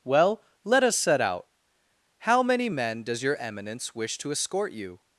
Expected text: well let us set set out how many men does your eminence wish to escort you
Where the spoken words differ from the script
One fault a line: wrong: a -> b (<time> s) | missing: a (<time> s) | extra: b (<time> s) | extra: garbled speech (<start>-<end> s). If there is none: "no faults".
missing: set (1.2 s)